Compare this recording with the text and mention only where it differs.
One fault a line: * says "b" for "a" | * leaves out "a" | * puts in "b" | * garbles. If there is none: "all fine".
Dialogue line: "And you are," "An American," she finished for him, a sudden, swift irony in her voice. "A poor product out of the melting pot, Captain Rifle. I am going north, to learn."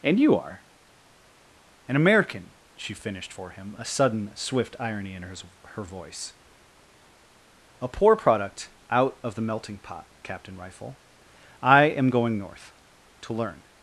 * puts in "her"